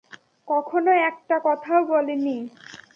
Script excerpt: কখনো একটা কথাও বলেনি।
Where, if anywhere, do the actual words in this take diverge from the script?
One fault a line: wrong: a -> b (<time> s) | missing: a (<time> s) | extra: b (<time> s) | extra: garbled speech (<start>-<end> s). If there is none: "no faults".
no faults